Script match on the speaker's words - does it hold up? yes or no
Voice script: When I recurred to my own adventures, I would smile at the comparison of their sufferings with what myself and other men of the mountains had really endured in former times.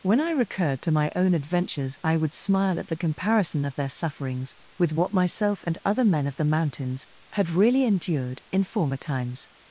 yes